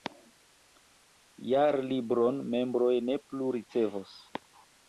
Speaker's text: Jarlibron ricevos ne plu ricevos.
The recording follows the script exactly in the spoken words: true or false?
false